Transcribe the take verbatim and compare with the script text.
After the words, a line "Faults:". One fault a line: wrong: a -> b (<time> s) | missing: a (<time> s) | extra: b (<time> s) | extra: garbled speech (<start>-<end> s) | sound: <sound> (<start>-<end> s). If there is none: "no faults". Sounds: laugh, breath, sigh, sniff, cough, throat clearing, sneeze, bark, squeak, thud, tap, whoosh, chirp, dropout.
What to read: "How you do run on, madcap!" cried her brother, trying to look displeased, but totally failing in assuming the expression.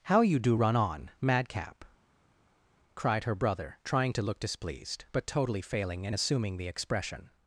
"How you do run on, madcap!" cried her brother, trying to look displeased, but totally failing in assuming the expression.
Faults:
no faults